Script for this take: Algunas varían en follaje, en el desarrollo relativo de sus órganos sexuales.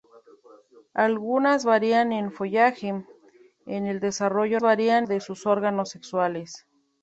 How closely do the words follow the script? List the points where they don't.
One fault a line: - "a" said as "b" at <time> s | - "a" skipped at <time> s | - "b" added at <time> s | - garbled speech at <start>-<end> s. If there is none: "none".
- "relativo" said as "varían" at 4.6 s